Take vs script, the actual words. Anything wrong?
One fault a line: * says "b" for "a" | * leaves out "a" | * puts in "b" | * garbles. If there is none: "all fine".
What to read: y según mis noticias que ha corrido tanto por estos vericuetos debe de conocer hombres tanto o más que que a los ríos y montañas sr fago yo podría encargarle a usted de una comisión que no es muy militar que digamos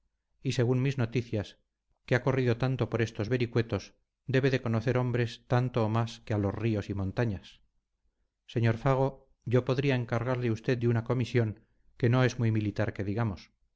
* leaves out "que"